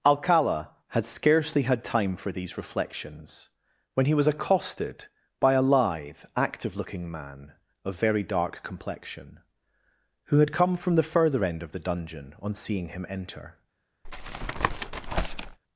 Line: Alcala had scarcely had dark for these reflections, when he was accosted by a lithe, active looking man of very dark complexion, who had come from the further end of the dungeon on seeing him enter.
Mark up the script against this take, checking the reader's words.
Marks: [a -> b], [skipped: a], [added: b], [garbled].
Alcala had scarcely had [dark -> time] for these reflections, when he was accosted by a lithe, active looking man of very dark complexion, who had come from the further end of the dungeon on seeing him enter.